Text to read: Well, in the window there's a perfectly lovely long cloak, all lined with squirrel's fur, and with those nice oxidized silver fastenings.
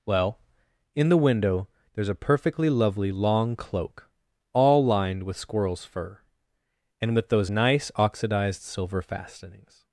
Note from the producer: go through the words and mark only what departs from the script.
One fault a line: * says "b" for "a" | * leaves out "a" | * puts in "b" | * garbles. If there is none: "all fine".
all fine